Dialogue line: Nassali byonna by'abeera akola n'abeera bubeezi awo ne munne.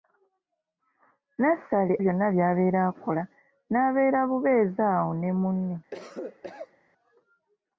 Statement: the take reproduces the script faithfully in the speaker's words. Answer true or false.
true